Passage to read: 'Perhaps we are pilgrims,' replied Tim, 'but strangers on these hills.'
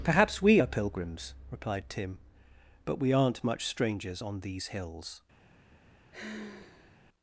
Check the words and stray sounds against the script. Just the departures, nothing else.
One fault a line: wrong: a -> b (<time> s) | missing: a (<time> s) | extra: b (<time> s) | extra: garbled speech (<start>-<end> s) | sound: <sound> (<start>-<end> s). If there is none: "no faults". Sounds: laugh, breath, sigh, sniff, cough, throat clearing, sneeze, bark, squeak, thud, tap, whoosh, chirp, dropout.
extra: we aren't much (3.0 s)
sound: sigh (6.1-7.0 s)